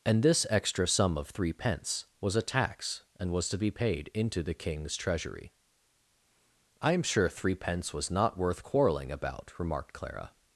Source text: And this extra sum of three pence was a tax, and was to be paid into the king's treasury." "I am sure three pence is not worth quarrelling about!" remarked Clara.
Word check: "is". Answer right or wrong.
wrong